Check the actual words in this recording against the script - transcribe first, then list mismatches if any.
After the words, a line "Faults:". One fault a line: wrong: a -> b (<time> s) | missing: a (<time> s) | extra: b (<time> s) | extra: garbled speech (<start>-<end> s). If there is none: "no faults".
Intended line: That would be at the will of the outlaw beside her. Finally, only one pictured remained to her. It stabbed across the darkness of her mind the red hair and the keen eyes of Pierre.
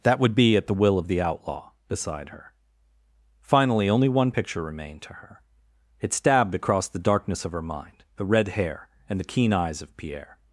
That would be at the will of the outlaw beside her. Finally, only one picture remained to her. It stabbed across the darkness of her mind the red hair and the keen eyes of Pierre.
Faults:
wrong: pictured -> picture (4.3 s)